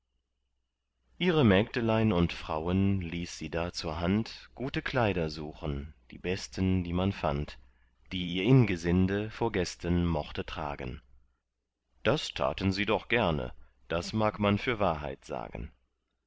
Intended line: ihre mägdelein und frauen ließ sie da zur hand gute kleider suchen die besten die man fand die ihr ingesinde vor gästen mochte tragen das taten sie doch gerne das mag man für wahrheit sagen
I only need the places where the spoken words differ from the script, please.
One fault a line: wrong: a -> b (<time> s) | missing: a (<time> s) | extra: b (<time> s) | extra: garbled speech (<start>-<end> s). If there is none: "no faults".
no faults